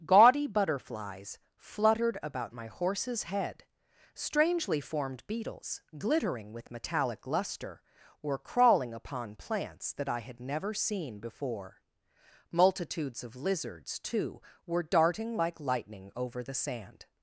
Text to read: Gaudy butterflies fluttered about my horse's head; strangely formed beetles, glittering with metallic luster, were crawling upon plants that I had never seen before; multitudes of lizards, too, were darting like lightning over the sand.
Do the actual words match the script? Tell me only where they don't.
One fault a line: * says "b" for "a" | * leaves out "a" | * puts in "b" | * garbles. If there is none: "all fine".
all fine